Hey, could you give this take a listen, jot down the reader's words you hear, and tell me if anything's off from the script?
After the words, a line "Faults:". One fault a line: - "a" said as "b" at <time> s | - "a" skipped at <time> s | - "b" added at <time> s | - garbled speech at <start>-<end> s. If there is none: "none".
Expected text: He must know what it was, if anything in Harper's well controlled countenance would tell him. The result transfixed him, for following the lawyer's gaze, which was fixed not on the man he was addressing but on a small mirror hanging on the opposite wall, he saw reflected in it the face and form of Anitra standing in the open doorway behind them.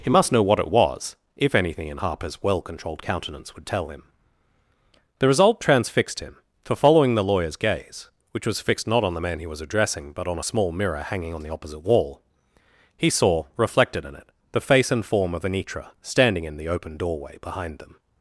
He must know what it was, if anything in Harper's well controlled countenance would tell him. The result transfixed him, for following the lawyer's gaze, which was fixed not on the man he was addressing but on a small mirror hanging on the opposite wall, he saw reflected in it the face and form of Anitra standing in the open doorway behind them.
Faults:
none